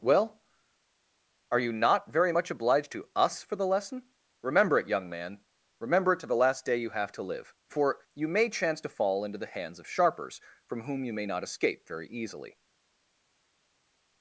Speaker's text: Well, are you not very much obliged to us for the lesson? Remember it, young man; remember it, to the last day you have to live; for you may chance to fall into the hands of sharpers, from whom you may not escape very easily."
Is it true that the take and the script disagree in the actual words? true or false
false